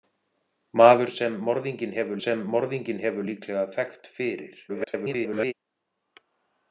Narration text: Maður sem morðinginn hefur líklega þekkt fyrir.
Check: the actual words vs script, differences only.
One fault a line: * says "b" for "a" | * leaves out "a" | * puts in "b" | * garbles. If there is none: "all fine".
* puts in "sem morðinginn hefur"
* garbles